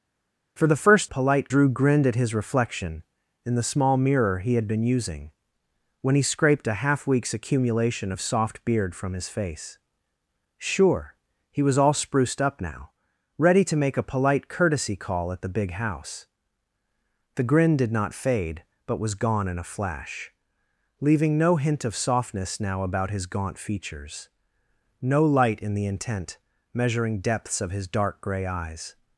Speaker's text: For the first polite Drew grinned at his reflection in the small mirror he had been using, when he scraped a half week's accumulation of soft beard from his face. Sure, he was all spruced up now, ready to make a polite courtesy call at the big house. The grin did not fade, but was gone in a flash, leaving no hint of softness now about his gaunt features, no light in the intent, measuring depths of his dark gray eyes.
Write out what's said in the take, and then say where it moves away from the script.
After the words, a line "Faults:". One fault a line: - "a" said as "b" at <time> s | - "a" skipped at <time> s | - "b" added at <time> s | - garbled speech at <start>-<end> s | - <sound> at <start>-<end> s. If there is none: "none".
For the first polite Drew grinned at his reflection in the small mirror he had been using, when he scraped a half week's accumulation of soft beard from his face. Sure, he was all spruced up now, ready to make a polite courtesy call at the big house. The grin did not fade, but was gone in a flash, leaving no hint of softness now about his gaunt features, no light in the intent, measuring depths of his dark gray eyes.
Faults:
none